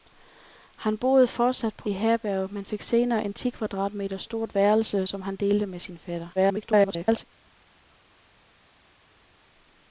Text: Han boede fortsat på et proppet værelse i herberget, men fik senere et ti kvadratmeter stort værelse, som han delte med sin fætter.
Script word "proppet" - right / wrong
wrong